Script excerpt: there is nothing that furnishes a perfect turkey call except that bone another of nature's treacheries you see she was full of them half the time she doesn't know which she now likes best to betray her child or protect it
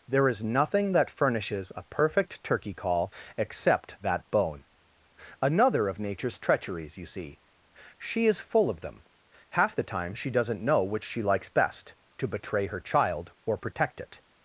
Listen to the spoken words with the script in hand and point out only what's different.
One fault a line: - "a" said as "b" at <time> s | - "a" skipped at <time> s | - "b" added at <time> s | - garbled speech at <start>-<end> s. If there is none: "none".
- "was" said as "is" at 8.3 s
- "now" skipped at 11.2 s